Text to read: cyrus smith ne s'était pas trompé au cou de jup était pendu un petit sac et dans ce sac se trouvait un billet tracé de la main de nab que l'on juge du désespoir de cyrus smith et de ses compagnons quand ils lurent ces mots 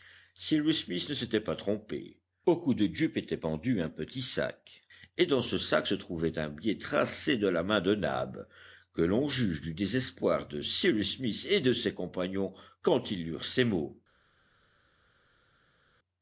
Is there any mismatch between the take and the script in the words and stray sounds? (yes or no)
no